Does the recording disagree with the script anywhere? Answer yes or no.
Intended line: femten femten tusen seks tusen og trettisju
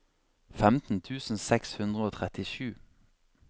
yes